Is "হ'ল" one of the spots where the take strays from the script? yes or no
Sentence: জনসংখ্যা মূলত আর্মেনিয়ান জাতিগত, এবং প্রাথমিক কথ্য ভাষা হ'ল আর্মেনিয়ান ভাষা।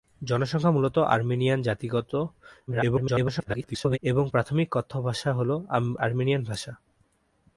no